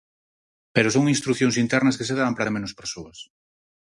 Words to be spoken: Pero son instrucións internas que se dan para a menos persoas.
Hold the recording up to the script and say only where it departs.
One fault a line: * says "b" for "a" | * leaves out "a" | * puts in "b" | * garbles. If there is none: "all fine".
all fine